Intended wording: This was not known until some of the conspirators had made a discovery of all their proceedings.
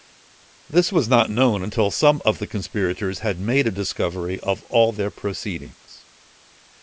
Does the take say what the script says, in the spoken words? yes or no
yes